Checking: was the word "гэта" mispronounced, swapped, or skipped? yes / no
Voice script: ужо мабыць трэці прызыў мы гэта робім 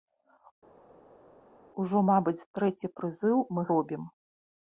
yes